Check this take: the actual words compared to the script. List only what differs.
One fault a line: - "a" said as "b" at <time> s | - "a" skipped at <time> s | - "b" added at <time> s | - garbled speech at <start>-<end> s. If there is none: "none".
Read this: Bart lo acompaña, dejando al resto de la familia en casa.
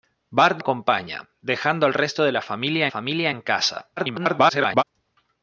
- "lo" skipped at 0.6 s
- "familia" added at 2.9 s
- garbled speech at 4.0-4.8 s